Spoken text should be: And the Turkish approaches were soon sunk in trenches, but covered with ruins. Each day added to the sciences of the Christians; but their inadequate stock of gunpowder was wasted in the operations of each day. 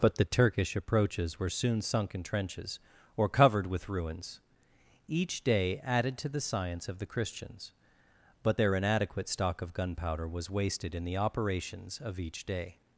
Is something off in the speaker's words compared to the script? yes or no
yes